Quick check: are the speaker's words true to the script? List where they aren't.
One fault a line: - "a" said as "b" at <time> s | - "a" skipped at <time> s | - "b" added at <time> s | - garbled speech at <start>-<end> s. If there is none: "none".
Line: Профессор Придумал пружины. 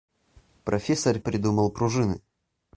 none